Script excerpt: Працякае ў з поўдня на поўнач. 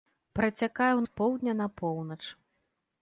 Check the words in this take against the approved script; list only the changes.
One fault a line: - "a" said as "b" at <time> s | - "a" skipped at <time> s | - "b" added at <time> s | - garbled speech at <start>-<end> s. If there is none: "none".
none